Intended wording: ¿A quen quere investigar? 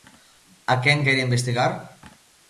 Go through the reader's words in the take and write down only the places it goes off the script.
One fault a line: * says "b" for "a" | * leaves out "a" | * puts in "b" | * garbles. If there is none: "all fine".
all fine